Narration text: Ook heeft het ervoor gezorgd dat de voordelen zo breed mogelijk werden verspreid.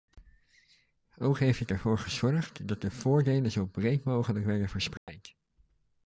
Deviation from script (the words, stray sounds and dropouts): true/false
true